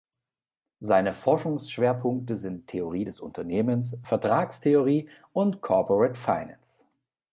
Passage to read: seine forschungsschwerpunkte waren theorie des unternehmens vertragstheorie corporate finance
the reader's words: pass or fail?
fail